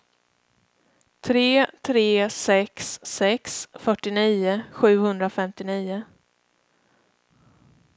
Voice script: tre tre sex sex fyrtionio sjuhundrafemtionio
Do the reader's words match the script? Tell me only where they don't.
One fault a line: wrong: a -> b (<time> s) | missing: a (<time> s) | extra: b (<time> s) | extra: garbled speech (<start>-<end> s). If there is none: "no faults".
no faults